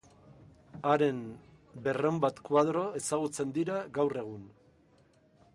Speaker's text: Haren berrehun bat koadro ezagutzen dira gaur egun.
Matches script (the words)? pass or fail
pass